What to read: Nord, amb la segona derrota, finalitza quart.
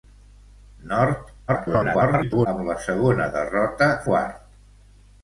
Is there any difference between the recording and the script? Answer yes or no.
yes